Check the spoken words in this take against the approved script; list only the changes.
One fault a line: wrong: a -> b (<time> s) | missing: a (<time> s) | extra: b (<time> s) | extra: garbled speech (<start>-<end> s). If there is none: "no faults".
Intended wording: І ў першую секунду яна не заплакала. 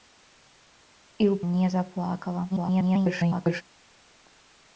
missing: першую секунду яна (1.4 s)
extra: garbled speech (2.5-3.6 s)